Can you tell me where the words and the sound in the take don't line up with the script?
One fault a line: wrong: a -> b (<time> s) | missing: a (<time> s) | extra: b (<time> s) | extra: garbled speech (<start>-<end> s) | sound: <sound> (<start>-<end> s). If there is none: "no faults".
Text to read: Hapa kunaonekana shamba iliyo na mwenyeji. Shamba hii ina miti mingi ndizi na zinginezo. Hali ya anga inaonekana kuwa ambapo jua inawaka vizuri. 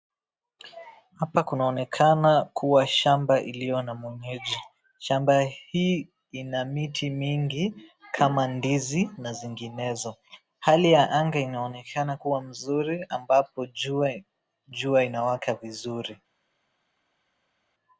extra: kuwa (2.4 s)
extra: kama (8.1 s)
extra: mzuri (12.4 s)